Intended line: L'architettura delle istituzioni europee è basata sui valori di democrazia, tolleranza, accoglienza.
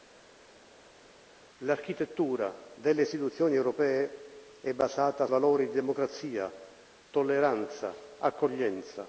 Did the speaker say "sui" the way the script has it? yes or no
no